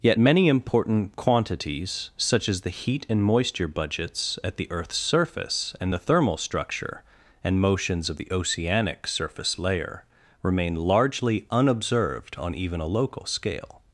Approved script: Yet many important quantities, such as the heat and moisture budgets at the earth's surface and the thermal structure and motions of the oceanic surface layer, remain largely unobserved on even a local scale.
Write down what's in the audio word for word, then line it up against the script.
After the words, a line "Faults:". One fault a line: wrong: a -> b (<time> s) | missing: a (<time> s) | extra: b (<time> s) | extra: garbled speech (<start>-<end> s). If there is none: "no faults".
Yet many important quantities, such as the heat and moisture budgets at the earth's surface and the thermal structure and motions of the oceanic surface layer, remain largely unobserved on even a local scale.
Faults:
no faults